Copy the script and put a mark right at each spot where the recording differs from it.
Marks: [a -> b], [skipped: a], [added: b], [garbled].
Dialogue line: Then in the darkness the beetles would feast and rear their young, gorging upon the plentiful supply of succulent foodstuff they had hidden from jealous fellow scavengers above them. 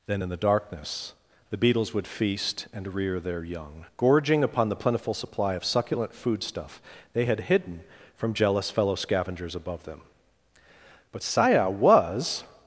Then in the darkness the beetles would feast and rear their young, gorging upon the plentiful supply of succulent foodstuff they had hidden from jealous fellow scavengers above them. [added: But Saya was]